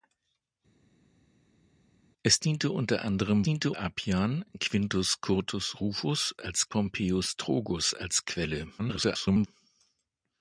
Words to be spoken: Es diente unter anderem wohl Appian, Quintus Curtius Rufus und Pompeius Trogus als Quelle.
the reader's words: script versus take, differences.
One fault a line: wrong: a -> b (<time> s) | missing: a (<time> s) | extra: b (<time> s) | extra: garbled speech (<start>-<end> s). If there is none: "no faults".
wrong: wohl -> diente (3.4 s)
wrong: und -> als (6.4 s)
extra: garbled speech (8.8-9.5 s)